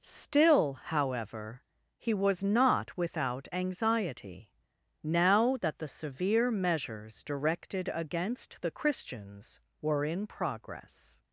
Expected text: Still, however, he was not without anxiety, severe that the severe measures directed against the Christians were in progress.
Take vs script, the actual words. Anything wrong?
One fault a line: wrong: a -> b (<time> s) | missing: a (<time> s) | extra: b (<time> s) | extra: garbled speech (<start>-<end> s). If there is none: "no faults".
wrong: severe -> now (5.0 s)